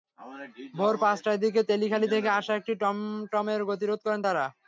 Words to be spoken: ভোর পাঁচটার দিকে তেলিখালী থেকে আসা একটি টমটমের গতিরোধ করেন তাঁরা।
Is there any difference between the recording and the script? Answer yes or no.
no